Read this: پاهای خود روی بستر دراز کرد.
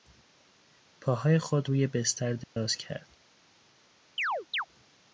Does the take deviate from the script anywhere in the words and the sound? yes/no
yes